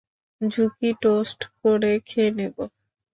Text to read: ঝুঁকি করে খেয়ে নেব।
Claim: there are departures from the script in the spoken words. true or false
true